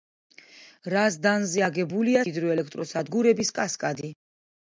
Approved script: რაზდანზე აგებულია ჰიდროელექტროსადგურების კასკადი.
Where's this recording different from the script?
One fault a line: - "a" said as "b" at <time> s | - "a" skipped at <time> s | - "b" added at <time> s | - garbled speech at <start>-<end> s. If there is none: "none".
none